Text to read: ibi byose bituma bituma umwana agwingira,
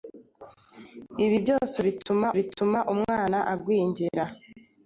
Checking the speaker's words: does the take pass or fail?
pass